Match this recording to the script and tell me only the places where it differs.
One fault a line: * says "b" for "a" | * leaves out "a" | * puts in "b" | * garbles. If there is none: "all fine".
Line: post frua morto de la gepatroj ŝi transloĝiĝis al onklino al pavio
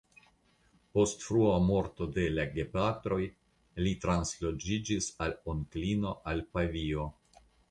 * says "li" for "ŝi"